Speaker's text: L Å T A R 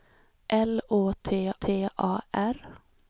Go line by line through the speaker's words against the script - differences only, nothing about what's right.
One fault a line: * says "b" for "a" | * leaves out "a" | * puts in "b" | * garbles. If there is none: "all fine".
* puts in "T"